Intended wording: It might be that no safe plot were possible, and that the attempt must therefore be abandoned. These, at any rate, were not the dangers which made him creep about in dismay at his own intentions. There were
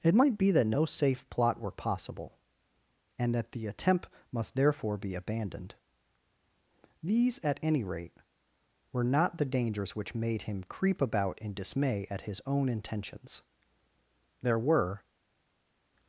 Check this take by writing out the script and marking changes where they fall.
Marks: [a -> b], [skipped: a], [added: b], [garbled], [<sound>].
It might be that no safe plot were possible, and that the attempt must therefore be abandoned. These, at any rate, were not the dangers which made him creep about in dismay at his own intentions. There were